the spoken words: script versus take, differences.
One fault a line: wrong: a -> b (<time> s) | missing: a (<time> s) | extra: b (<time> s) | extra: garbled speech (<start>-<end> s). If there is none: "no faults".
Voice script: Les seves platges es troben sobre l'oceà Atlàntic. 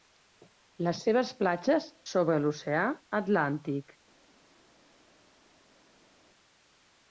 missing: es troben (1.9 s)